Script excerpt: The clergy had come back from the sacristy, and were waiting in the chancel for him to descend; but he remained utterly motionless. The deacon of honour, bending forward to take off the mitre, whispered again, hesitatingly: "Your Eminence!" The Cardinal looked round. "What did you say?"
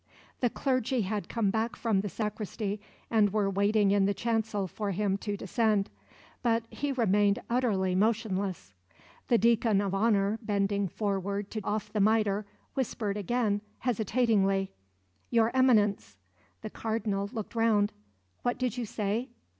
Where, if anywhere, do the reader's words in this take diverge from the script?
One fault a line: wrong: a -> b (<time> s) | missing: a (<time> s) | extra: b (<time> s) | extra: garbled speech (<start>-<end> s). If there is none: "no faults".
missing: take (11.6 s)